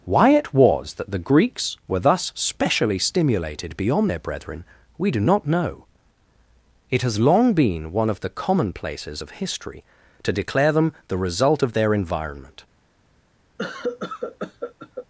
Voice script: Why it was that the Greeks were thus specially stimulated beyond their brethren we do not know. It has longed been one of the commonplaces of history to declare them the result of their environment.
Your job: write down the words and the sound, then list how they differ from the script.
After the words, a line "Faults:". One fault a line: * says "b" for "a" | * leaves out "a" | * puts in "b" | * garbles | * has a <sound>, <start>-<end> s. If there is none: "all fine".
Why it was that the Greeks were thus specially stimulated beyond their brethren we do not know. It has long been one of the commonplaces of history to declare them the result of their environment.
Faults:
* says "long" for "longed"
* has a cough, 13.6-15.1 s